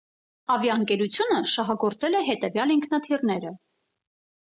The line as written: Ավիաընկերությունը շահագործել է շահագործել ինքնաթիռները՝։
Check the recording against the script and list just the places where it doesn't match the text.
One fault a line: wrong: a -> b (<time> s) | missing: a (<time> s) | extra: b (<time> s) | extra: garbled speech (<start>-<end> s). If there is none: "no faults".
wrong: շահագործել -> հետևյալ (2.3 s)